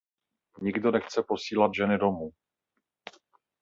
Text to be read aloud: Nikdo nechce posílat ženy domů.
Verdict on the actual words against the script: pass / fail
pass